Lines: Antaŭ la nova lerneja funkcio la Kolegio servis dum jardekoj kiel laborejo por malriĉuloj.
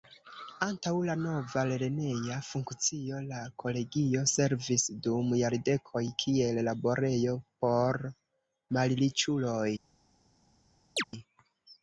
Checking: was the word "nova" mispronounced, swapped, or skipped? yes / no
no